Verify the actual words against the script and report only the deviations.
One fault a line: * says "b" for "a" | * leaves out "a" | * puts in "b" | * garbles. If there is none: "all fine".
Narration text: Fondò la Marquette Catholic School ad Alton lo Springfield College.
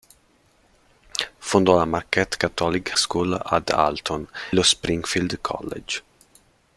all fine